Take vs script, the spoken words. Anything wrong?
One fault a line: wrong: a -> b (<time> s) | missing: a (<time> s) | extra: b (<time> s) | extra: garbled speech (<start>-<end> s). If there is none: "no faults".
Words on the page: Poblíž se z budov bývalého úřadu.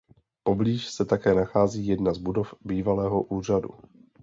extra: také nachází jedna (1.1 s)